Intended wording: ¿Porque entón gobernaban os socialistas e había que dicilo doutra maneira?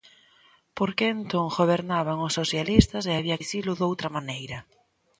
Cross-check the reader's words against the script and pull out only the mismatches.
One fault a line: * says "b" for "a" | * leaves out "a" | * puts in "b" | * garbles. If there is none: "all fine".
* leaves out "que"